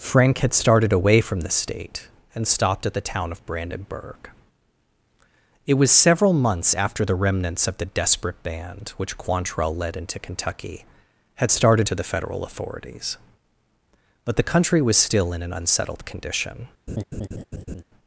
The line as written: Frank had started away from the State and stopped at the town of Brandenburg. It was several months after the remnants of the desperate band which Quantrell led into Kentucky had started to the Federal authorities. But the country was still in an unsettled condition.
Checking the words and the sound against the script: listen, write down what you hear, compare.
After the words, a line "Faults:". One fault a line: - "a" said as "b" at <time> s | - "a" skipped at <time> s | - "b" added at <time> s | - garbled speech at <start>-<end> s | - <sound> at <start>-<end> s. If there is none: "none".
Frank had started away from the State and stopped at the town of Brandenburg. It was several months after the remnants of the desperate band which Quantrell led into Kentucky had started to the Federal authorities. But the country was still in an unsettled condition.
Faults:
- laugh at 16.9-17.8 s